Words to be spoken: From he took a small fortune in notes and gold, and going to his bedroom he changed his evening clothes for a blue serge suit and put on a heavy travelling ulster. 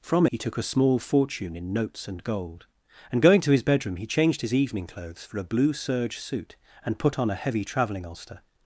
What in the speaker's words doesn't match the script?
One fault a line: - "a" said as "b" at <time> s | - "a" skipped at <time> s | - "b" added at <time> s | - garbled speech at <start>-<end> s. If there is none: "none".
none